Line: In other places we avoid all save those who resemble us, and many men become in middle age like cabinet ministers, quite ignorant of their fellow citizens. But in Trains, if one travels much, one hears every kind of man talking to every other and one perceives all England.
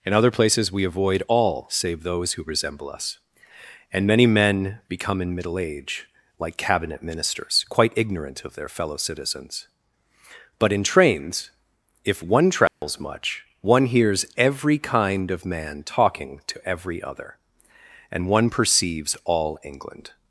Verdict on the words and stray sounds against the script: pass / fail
fail